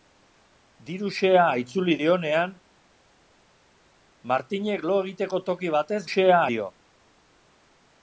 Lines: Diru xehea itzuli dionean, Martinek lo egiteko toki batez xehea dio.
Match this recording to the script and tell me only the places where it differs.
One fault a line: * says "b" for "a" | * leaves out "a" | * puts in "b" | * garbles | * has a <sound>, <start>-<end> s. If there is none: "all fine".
all fine